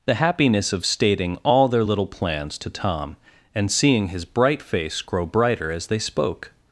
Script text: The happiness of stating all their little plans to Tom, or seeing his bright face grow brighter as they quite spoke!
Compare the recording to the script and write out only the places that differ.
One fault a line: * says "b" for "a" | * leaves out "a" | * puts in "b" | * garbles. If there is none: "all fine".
* says "and" for "or"
* leaves out "quite"